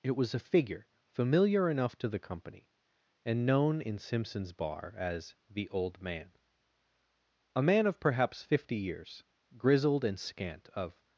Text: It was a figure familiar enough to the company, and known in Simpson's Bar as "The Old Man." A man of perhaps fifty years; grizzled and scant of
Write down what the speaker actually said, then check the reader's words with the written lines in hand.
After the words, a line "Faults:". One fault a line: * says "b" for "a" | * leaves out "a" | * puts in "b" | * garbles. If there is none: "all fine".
It was a figure familiar enough to the company, and known in Simpson's Bar as "The Old Man." A man of perhaps fifty years; grizzled and scant of
Faults:
all fine